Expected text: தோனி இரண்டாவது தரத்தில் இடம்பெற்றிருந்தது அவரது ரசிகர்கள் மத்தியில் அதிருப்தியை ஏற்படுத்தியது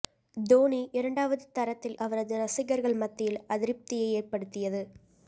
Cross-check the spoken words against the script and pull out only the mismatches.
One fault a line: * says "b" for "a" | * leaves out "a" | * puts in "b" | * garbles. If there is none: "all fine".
* leaves out "இடம்பெற்றிருந்தது"